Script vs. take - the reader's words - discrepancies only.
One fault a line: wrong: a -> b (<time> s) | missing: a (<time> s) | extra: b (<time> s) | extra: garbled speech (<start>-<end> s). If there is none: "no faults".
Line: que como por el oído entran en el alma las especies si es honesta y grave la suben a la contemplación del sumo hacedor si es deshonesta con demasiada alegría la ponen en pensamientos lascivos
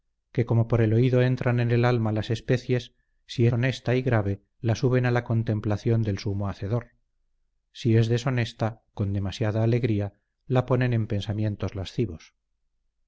missing: es (3.5 s)